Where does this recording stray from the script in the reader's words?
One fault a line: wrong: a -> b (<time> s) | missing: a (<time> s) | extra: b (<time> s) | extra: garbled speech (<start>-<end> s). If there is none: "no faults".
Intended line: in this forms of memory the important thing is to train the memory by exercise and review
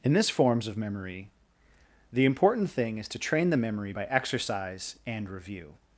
no faults